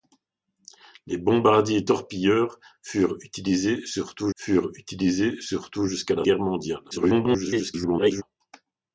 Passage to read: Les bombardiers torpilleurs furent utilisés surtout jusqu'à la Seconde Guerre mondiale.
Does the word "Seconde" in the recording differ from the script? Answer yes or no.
yes